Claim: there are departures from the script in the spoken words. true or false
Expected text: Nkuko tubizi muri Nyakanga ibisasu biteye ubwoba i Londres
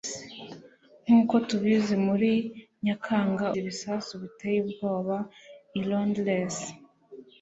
false